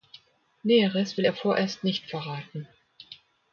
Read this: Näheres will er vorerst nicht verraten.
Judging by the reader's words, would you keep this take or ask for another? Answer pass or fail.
pass